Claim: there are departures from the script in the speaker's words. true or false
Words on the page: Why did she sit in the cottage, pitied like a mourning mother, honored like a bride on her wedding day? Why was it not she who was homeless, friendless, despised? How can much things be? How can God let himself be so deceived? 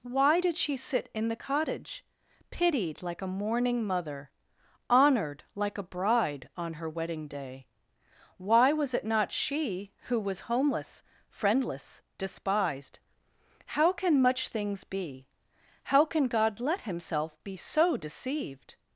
false